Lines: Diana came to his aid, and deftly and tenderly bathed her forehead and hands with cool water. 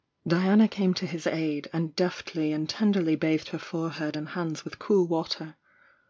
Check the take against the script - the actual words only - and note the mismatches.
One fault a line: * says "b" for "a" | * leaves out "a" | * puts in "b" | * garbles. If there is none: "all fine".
all fine